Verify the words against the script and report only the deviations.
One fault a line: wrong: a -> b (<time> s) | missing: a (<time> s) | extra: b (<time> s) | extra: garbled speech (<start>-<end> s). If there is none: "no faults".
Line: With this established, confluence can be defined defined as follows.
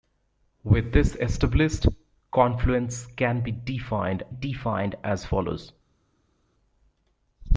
no faults